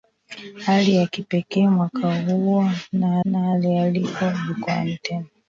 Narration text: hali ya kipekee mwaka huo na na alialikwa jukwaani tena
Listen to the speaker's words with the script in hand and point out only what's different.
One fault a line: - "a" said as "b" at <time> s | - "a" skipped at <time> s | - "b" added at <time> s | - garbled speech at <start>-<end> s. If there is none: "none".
none